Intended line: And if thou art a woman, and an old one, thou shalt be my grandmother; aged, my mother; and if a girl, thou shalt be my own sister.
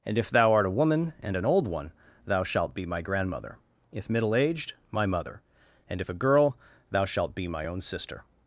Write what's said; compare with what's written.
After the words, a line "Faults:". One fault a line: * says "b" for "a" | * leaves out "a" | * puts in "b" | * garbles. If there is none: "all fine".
And if thou art a woman, and an old one, thou shalt be my grandmother; if middle aged, my mother; and if a girl, thou shalt be my own sister.
Faults:
* puts in "if middle"